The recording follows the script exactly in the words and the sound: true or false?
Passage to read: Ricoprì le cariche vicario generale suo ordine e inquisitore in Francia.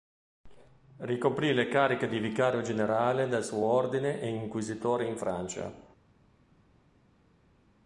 false